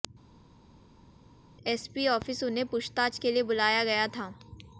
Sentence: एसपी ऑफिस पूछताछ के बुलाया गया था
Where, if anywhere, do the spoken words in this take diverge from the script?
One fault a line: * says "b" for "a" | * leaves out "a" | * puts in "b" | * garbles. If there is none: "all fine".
* puts in "उन्हें"
* puts in "लिए"